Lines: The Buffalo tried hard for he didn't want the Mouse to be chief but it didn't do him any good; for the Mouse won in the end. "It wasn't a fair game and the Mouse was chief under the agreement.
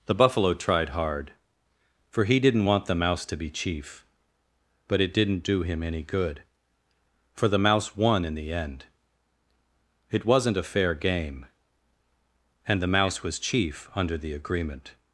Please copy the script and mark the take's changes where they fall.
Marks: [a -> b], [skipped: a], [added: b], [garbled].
The Buffalo tried hard for he didn't want the Mouse to be chief but it didn't do him any good; for the Mouse won in the end. "It wasn't a fair game and the Mouse was chief under the agreement.